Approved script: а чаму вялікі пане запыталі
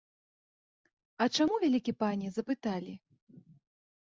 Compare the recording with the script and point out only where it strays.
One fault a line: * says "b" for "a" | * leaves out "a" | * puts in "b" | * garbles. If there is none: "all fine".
all fine